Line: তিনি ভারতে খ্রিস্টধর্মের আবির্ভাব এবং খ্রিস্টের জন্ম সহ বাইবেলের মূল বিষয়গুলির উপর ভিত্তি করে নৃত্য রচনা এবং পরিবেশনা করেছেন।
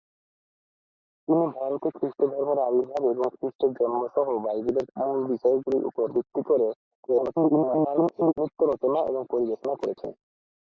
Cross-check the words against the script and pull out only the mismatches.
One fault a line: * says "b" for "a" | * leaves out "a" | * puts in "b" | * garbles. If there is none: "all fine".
* garbles